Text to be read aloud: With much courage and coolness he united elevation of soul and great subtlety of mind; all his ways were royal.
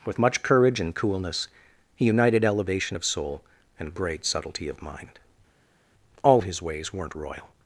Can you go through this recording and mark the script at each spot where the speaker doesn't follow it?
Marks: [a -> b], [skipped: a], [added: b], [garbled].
With much courage and coolness he united elevation of soul and great subtlety of mind; all his ways [were -> weren't] royal.